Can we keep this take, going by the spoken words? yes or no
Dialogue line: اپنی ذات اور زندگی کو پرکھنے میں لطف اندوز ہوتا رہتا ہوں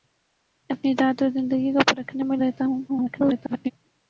no